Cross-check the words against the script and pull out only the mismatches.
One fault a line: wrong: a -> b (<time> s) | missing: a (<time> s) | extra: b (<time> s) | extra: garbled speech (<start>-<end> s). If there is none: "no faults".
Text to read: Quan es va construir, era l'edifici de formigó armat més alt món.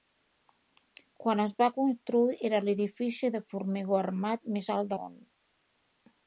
no faults